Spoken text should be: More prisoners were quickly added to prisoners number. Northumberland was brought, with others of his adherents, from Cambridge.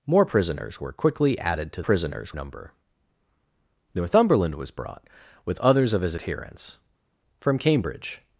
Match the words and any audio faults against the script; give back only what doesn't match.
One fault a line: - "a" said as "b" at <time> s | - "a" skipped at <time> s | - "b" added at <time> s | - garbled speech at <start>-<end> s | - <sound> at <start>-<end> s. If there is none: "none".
none